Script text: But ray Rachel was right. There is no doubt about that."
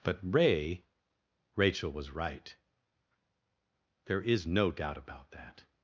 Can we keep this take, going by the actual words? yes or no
yes